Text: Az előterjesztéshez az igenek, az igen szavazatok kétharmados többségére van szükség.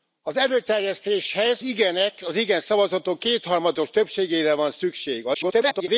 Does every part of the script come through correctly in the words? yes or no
no